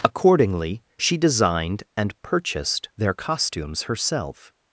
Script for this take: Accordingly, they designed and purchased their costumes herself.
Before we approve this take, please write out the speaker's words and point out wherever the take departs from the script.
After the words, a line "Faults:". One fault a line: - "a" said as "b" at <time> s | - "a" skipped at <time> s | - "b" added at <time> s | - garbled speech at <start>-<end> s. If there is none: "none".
Accordingly, she designed and purchased their costumes herself.
Faults:
- "they" said as "she" at 1.0 s